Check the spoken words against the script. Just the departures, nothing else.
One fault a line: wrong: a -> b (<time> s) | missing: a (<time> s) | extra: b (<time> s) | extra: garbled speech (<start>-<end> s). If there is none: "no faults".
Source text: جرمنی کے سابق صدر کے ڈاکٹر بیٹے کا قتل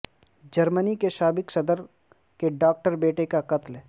no faults